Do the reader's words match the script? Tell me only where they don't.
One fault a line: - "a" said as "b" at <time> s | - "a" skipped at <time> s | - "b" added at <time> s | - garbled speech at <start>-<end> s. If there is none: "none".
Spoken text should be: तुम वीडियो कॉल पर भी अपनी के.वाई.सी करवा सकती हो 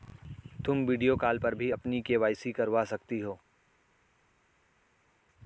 none